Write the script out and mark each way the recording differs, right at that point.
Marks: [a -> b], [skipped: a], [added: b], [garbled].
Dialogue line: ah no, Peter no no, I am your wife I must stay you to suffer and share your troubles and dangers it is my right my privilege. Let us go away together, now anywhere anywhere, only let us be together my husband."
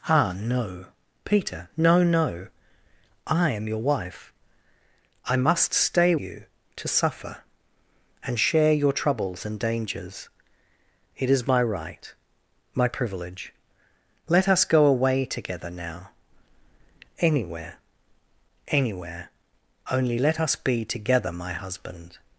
ah no, Peter no no, I am your wife I must stay you to suffer and share your troubles and dangers it is my right my privilege. Let us go away together, now anywhere anywhere, only let us be together my husband."